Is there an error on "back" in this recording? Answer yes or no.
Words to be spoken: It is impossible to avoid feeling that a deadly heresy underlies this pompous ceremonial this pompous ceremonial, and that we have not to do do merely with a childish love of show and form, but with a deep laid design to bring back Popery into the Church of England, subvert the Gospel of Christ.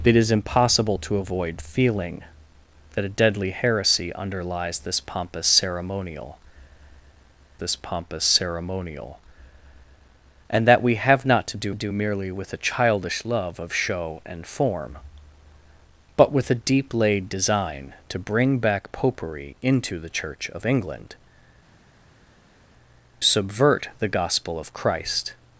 no